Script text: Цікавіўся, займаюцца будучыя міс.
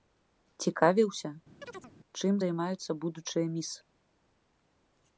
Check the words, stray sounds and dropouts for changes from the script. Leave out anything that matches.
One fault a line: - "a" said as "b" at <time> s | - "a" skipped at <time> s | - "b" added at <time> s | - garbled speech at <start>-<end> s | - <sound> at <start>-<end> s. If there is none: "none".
- chirp at 1.6-1.9 s
- "чым" added at 2.2 s